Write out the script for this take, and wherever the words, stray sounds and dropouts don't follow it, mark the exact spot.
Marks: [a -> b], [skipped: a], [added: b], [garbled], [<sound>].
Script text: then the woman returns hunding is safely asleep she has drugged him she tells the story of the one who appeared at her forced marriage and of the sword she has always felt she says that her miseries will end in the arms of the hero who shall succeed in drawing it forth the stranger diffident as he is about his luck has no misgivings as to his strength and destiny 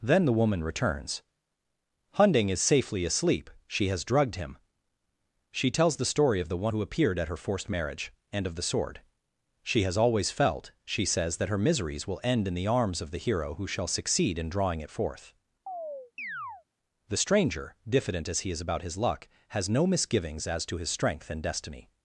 then the woman returns hunding is safely asleep she has drugged him she tells the story of the one who appeared at her forced marriage and of the sword she has always felt she says that her miseries will end in the arms of the hero who shall succeed in drawing it forth [chirp] the stranger diffident as he is about his luck has no misgivings as to his strength and destiny